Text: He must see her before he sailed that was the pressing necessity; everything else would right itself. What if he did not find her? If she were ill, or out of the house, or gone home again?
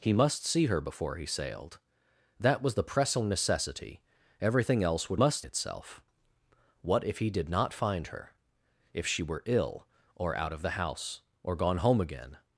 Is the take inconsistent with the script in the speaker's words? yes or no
yes